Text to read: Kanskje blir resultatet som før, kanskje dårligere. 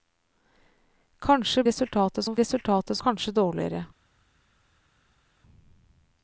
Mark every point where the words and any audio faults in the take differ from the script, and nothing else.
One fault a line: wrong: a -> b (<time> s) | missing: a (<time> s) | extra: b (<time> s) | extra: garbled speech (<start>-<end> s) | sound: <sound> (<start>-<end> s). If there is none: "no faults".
missing: blir (1.6 s)
wrong: før -> resultatet (2.4 s)